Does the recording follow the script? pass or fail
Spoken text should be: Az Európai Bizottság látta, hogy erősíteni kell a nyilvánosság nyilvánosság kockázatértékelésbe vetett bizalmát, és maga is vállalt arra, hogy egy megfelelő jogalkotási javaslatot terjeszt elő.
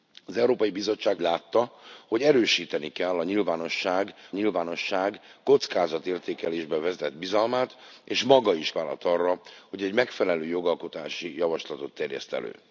pass